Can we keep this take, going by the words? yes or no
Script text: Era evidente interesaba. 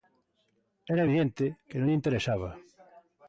no